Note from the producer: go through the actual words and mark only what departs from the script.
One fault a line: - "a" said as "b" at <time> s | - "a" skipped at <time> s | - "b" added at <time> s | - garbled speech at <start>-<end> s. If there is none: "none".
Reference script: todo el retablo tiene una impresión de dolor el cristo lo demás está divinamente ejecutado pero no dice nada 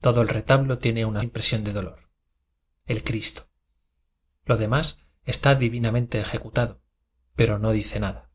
none